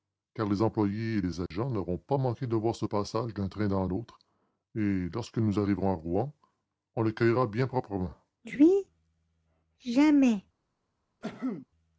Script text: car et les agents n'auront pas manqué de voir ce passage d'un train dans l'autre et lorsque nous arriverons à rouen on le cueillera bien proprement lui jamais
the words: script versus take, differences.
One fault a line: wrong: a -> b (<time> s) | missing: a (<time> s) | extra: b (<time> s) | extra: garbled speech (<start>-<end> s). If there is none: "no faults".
extra: les employés (0.5 s)